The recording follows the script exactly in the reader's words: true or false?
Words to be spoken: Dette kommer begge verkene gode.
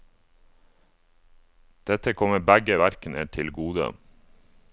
false